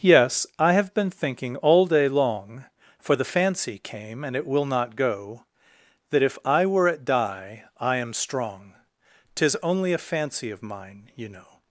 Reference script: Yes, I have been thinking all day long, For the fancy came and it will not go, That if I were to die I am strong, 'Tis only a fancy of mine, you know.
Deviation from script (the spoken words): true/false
true